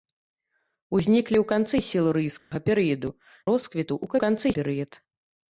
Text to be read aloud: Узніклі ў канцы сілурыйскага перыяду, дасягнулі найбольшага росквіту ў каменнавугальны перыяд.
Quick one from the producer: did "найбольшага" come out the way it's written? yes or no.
no